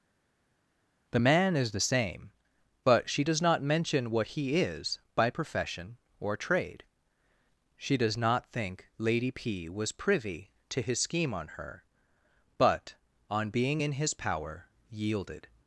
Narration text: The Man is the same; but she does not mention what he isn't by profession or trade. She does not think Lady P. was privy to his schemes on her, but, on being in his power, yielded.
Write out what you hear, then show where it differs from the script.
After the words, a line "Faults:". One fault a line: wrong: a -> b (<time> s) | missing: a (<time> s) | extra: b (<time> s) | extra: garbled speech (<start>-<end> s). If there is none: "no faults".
The Man is the same; but she does not mention what he is by profession or trade. She does not think Lady P. was privy to his scheme on her, but, on being in his power, yielded.
Faults:
wrong: isn't -> is (4.6 s)
wrong: schemes -> scheme (11.0 s)